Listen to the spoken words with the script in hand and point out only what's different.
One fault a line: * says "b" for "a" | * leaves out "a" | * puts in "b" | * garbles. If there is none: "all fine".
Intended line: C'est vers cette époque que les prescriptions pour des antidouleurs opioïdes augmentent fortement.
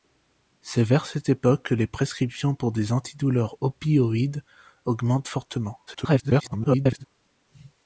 * garbles